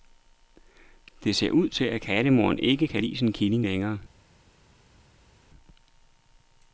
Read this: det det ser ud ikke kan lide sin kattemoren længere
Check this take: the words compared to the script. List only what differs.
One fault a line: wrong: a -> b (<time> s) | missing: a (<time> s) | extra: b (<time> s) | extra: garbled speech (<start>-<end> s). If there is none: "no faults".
missing: det (1.4 s)
extra: til at kattemoren (1.7 s)
wrong: kattemoren -> killing (3.3 s)